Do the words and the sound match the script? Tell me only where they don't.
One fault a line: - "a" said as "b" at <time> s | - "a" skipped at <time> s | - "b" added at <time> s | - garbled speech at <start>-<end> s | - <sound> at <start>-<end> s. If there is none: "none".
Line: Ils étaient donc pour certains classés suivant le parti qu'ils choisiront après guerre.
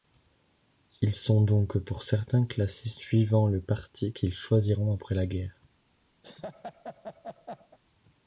- "étaient" said as "sont" at 1.1 s
- "la" added at 5.1 s
- laugh at 6.2-7.8 s